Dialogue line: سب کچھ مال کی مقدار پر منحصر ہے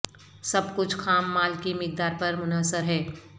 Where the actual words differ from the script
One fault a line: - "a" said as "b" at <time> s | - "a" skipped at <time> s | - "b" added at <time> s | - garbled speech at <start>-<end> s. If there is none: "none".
- "خام" added at 0.9 s